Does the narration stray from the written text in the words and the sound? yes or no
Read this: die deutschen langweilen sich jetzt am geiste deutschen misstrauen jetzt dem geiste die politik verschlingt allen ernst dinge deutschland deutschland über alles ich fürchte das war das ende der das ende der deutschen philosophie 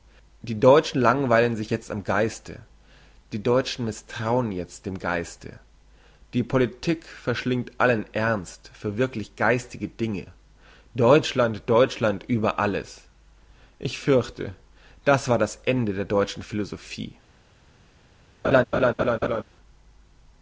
yes